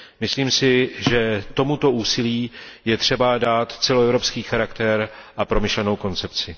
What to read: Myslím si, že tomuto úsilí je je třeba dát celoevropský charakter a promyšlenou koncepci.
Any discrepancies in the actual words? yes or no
yes